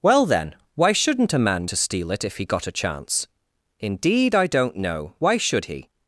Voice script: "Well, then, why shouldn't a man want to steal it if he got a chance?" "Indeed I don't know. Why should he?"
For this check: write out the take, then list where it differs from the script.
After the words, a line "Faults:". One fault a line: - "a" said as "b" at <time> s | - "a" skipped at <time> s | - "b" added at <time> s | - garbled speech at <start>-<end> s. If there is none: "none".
"Well, then, why shouldn't a man to steal it if he got a chance?" "Indeed I don't know. Why should he?"
Faults:
- "want" skipped at 1.7 s